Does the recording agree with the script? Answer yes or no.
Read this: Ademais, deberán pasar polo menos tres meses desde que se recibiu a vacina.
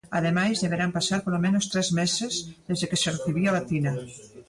yes